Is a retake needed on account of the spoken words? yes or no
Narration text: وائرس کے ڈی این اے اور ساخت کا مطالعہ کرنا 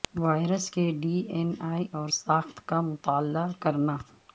no